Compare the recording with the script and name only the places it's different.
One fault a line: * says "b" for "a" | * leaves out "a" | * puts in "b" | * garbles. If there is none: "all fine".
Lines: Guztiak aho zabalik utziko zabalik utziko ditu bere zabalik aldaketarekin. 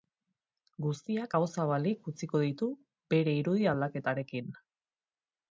* leaves out "zabalik utziko"
* says "irudi" for "zabalik"